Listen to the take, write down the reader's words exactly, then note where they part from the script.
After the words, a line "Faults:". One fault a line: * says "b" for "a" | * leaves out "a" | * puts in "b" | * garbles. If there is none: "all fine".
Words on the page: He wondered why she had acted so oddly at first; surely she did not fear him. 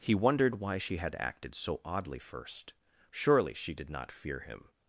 He wondered why she had acted so oddly first; surely she did not fear him.
Faults:
* leaves out "at"